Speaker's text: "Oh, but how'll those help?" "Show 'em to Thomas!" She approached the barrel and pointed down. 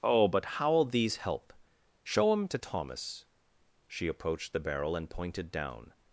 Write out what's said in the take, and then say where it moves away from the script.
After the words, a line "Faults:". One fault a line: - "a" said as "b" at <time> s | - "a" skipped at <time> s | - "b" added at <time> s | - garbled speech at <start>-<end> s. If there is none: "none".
"Oh, but how'll these help?" "Show 'em to Thomas!" She approached the barrel and pointed down.
Faults:
- "those" said as "these" at 0.8 s